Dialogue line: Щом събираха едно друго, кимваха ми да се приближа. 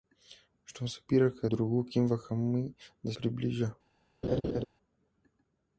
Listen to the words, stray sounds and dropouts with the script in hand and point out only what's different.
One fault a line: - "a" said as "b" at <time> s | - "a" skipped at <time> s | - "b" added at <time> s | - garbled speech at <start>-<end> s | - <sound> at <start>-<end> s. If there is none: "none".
- "едно" skipped at 1.5 s
- "се" skipped at 3.1 s
- laugh at 4.2-4.6 s